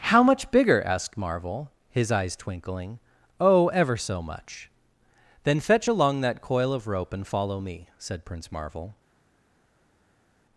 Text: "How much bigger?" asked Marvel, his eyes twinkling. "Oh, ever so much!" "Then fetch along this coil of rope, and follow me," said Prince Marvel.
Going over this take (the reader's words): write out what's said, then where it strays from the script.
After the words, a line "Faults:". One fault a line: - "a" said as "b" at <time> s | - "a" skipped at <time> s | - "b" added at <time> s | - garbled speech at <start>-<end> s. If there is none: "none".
"How much bigger?" asked Marvel, his eyes twinkling. "Oh, ever so much!" "Then fetch along that coil of rope, and follow me," said Prince Marvel.
Faults:
- "this" said as "that" at 6.2 s